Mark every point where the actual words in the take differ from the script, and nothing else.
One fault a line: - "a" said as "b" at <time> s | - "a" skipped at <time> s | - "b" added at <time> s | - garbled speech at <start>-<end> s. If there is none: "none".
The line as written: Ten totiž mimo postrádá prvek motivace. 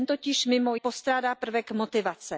none